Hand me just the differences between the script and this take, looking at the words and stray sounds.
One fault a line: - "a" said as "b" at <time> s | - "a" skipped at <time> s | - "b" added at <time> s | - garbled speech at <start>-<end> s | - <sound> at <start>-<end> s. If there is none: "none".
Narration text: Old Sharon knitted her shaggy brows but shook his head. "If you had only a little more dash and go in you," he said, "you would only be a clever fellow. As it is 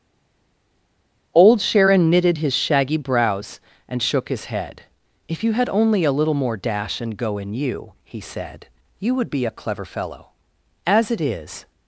- "her" said as "his" at 2.4 s
- "but" said as "and" at 3.9 s
- "only" skipped at 9.3 s